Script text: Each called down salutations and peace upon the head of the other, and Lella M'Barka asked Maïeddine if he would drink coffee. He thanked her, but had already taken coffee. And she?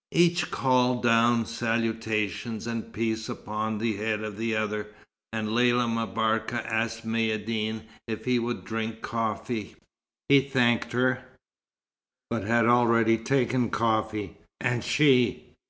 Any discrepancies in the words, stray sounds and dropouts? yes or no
no